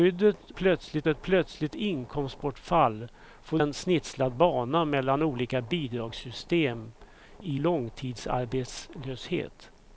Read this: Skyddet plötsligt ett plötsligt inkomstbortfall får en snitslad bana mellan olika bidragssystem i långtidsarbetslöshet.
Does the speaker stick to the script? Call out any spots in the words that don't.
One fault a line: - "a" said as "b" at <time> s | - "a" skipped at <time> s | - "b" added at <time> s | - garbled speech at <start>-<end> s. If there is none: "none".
none